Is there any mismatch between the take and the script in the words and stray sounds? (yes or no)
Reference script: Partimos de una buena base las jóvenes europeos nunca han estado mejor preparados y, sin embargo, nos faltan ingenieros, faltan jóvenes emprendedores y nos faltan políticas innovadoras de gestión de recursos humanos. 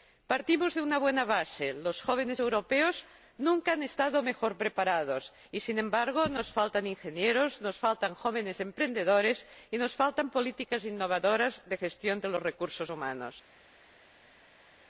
yes